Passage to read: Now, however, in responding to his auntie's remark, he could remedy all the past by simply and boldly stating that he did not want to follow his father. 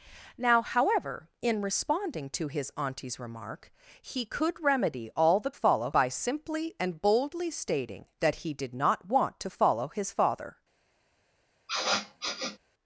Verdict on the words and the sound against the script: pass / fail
fail